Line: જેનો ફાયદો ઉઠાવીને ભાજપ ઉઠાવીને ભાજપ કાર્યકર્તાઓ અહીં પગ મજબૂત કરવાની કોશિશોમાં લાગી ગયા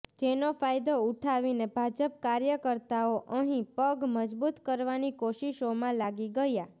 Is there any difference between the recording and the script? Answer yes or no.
yes